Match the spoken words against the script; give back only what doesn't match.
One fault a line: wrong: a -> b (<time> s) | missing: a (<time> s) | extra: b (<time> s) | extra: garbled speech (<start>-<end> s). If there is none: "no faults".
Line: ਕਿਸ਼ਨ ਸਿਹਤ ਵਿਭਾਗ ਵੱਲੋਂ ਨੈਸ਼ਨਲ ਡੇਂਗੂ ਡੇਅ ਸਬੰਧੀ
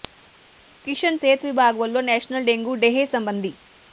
no faults